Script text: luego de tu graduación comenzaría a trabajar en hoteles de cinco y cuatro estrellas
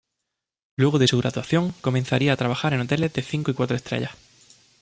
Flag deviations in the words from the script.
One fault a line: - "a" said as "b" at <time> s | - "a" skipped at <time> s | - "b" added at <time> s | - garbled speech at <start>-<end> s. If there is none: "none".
- "tu" said as "su" at 1.0 s